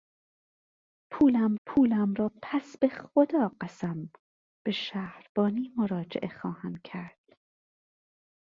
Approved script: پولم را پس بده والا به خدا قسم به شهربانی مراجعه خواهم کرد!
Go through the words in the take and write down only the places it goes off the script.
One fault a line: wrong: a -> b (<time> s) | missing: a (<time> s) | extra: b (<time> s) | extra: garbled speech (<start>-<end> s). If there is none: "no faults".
extra: پولم (1.7 s)
missing: بده والا (2.8 s)